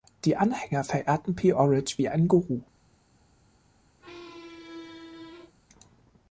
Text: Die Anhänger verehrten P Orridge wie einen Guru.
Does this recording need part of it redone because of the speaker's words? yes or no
no